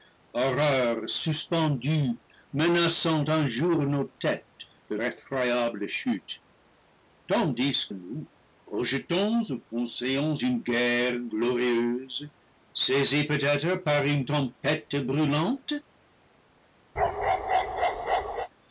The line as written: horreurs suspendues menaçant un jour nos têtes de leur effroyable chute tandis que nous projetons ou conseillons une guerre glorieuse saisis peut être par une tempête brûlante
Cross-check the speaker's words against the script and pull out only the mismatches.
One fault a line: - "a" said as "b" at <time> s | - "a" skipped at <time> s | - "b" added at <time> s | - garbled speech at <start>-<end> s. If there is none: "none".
- "leur" skipped at 5.0 s
- "que" skipped at 7.9 s